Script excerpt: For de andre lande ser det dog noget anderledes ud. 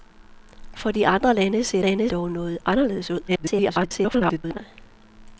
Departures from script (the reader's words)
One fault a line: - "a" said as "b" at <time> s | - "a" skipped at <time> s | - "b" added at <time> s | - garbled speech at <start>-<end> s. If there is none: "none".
- "det" said as "lande" at 1.8 s
- garbled speech at 3.3-4.6 s